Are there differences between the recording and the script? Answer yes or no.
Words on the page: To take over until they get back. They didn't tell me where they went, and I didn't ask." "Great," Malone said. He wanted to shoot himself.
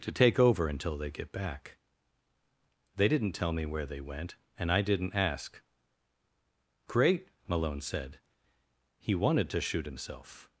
no